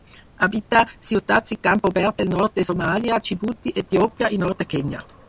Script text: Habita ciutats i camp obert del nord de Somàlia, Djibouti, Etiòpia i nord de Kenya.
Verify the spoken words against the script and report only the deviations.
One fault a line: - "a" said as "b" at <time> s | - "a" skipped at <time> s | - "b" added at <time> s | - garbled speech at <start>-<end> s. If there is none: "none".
none